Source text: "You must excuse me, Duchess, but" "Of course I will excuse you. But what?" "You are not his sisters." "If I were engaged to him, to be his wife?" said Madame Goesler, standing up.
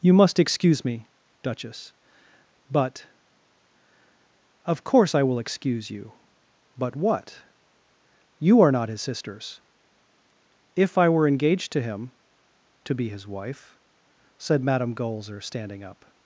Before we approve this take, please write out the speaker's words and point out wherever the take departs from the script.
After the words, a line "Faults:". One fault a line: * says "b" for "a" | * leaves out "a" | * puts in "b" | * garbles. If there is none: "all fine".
"You must excuse me, Duchess, but" "Of course I will excuse you. But what?" "You are not his sisters." "If I were engaged to him, to be his wife?" said Madame Goesler, standing up.
Faults:
all fine